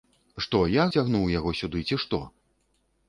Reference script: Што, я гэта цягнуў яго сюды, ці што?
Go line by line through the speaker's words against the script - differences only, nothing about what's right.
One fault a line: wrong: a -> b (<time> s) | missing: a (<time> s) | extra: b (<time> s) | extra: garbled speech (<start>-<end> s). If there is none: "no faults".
missing: гэта (0.8 s)